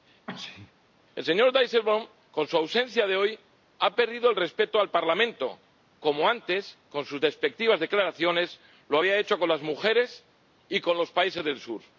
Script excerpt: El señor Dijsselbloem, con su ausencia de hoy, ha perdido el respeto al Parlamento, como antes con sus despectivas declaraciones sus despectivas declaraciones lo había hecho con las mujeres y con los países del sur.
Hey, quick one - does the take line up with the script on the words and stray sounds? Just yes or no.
no